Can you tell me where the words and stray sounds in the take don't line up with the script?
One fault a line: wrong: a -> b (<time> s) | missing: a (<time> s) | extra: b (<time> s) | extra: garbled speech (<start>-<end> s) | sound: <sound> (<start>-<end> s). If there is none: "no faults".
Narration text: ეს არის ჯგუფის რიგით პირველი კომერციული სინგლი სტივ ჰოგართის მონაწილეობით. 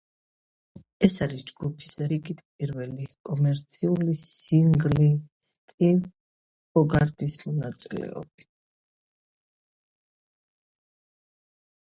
no faults